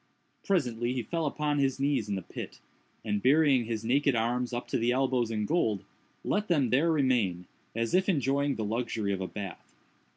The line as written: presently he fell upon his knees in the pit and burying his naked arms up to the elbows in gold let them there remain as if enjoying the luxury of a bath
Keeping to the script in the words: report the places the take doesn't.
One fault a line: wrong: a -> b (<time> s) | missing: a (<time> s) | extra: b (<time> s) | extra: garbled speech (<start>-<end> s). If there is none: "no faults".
no faults